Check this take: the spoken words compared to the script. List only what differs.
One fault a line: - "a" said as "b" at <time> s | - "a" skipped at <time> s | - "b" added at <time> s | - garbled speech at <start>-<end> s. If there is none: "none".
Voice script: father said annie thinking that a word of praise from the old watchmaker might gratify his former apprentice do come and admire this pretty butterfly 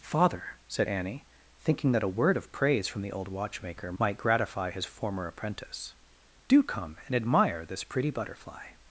none